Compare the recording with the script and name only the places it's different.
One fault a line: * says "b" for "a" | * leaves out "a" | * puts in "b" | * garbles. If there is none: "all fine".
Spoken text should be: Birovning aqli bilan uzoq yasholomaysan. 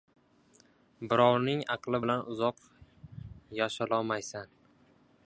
all fine